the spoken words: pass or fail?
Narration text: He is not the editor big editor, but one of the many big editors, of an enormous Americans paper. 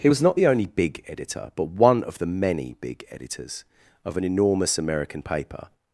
fail